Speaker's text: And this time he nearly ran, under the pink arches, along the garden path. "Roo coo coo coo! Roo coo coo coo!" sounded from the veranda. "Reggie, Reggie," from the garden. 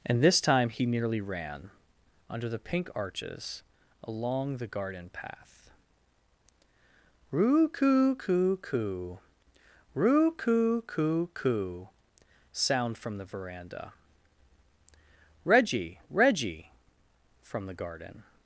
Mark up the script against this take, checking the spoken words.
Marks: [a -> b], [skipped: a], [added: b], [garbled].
And this time he nearly ran, under the pink arches, along the garden path. "Roo coo coo coo! Roo coo coo coo!" [sounded -> sound] from the veranda. "Reggie, Reggie," from the garden.